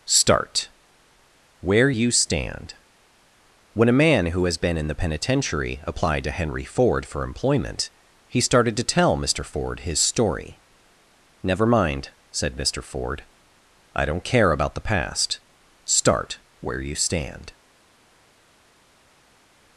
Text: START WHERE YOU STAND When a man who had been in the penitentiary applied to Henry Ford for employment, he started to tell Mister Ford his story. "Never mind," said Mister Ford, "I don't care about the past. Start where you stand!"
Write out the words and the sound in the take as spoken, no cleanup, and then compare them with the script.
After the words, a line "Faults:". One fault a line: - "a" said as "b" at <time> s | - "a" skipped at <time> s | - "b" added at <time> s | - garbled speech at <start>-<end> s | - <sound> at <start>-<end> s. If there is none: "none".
START WHERE YOU STAND When a man who has been in the penitentiary applied to Henry Ford for employment, he started to tell Mister Ford his story. "Never mind," said Mister Ford, "I don't care about the past. Start where you stand!"
Faults:
- "had" said as "has" at 4.4 s